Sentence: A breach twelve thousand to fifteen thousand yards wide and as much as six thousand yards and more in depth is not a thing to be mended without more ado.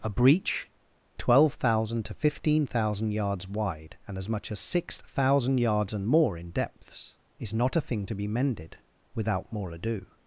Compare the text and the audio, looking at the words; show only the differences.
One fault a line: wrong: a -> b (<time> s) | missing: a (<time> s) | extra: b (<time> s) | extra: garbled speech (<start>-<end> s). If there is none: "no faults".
wrong: depth -> depths (6.5 s)